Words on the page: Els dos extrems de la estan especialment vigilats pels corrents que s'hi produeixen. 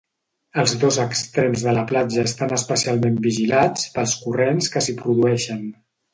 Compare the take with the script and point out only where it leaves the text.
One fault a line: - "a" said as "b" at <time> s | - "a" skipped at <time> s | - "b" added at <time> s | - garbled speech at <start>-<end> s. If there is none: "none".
- "platja" added at 1.9 s